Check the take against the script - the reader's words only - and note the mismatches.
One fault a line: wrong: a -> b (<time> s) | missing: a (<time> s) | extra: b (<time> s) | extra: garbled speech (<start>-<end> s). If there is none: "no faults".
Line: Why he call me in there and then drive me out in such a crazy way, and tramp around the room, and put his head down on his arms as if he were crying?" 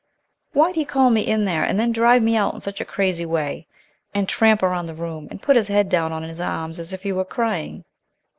no faults